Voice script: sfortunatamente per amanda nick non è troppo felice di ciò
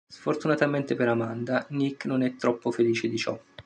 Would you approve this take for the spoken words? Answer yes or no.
yes